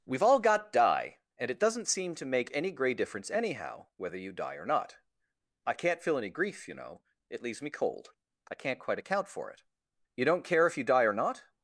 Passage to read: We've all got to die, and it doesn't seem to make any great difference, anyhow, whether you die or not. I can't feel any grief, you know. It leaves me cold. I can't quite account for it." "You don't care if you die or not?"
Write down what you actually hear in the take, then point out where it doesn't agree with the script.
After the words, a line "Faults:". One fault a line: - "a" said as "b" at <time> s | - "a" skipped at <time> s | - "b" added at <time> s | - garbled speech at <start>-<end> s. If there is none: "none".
We've all got die, and it doesn't seem to make any grey difference, anyhow, whether you die or not. I can't feel any grief, you know. It leaves me cold. I can't quite account for it." "You don't care if you die or not?"
Faults:
- "to" skipped at 0.7 s
- "great" said as "grey" at 2.7 s